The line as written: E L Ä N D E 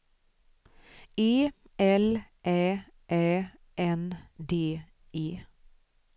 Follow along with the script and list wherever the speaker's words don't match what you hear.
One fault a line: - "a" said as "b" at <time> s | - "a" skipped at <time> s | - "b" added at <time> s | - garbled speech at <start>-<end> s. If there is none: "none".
- "Ä" added at 3.1 s